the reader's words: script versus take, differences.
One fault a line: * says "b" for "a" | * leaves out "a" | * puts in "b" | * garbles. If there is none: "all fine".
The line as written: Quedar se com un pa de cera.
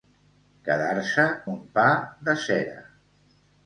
* leaves out "com"